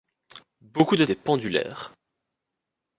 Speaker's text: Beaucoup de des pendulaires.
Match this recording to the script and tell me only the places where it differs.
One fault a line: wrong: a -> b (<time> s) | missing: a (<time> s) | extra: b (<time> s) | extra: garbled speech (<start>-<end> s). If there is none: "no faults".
no faults